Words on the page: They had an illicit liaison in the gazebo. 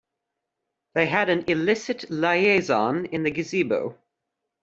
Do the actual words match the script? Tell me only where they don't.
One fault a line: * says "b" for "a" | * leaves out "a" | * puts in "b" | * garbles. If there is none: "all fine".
all fine